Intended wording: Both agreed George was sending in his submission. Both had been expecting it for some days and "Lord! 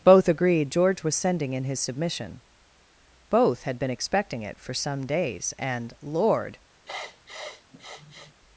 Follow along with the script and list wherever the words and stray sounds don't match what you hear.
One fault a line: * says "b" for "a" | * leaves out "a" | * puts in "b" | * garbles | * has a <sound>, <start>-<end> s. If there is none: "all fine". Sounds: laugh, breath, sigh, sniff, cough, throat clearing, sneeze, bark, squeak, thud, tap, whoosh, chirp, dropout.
* has a sniff, 6.9-8.3 s